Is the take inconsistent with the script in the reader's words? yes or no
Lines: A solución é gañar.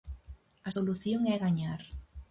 no